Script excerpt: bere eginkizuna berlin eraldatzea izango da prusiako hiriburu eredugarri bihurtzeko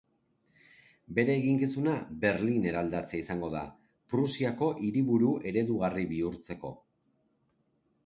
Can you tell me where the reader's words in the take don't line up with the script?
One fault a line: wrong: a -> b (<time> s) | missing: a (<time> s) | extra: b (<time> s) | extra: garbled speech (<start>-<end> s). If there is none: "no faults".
no faults